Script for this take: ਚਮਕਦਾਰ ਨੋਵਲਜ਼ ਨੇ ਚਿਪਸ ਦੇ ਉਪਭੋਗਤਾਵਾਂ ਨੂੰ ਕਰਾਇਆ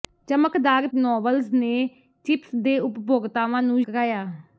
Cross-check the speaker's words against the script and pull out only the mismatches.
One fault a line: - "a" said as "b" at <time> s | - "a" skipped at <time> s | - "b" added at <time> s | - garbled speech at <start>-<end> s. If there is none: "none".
none